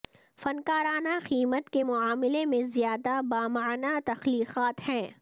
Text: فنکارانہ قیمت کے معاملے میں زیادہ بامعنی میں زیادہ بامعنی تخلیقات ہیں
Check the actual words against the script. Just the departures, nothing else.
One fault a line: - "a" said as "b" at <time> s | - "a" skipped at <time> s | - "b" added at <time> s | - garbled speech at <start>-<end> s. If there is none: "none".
- "میں زیادہ بامعنی" skipped at 4.0 s